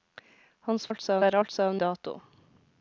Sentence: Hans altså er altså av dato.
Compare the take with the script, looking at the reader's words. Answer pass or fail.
pass